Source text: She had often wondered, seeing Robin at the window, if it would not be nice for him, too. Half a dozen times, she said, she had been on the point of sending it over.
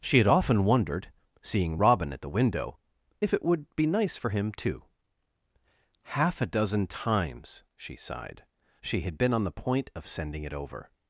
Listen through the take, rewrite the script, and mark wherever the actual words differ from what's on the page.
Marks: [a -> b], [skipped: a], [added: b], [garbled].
She had often wondered, seeing Robin at the window, if it would [skipped: not] be nice for him, too. Half a dozen times, she [said, -> sighed] she had been on the point of sending it over.